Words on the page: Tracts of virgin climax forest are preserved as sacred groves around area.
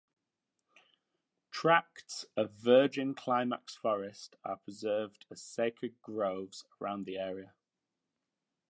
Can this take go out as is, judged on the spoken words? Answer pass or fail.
fail